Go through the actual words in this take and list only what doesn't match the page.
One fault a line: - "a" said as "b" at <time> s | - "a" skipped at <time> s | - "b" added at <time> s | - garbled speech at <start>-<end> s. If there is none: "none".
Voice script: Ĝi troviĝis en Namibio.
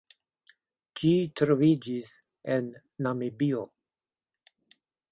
none